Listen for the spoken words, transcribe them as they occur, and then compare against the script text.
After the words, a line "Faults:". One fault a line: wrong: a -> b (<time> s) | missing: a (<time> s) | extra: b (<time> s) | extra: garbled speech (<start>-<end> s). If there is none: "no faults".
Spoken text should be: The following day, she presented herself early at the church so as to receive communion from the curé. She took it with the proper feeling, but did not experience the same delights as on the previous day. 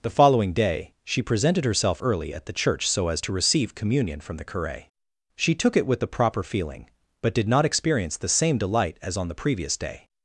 The following day, she presented herself early at the church so as to receive communion from the curé. She took it with the proper feeling, but did not experience the same delight as on the previous day.
Faults:
wrong: delights -> delight (8.6 s)